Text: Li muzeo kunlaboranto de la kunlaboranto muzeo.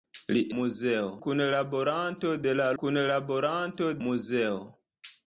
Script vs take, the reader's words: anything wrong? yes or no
no